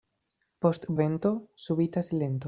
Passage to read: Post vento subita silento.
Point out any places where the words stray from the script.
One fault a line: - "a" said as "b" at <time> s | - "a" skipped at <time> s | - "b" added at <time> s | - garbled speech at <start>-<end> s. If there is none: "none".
none